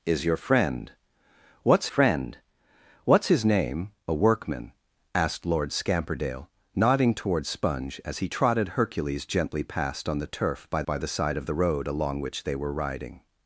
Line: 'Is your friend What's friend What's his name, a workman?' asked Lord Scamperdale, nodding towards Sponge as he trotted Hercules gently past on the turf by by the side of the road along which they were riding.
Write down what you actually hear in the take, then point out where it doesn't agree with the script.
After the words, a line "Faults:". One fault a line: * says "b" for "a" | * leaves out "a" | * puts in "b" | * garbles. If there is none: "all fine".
'Is your friend What's friend What's his name, a workman?' asked Lord Scamperdale, nodding towards Sponge as he trotted Hercules gently past on the turf by by the side of the road along which they were riding.
Faults:
all fine